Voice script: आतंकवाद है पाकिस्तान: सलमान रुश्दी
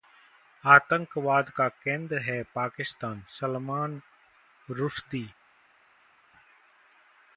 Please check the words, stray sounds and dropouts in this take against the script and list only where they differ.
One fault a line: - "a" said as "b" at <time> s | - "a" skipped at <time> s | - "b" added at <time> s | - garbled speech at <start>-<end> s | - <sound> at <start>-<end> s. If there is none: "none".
- "का केंद्र" added at 1.5 s